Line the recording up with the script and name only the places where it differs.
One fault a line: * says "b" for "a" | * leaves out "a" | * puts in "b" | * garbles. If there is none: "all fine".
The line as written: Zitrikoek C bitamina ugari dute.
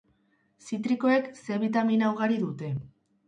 all fine